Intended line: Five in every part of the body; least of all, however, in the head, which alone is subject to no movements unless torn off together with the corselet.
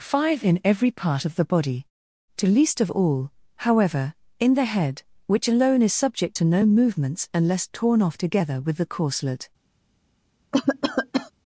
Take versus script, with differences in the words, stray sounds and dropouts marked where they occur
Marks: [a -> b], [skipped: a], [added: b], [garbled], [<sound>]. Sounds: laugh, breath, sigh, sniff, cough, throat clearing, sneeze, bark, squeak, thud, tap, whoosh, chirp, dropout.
Five in every part of the body; [added: to] least of all, however, in the head, which alone is subject to no movements unless torn off together with the corselet. [cough]